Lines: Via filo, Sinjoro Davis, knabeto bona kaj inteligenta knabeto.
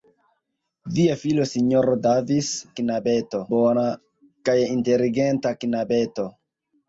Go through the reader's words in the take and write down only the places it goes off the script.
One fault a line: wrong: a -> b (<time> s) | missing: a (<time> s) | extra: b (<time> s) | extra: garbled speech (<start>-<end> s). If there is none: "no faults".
no faults